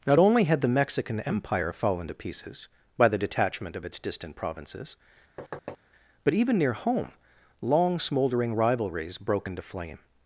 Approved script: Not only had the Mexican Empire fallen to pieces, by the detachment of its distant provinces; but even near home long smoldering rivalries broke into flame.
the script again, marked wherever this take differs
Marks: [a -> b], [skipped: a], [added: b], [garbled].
Not only had the Mexican Empire fallen to pieces, by the detachment of its distant provinces; but even near home long smoldering rivalries broke into flame.